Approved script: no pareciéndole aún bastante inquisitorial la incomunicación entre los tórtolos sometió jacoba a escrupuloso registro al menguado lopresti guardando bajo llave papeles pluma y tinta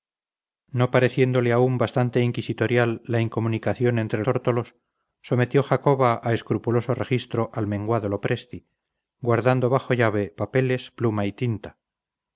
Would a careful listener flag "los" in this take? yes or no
yes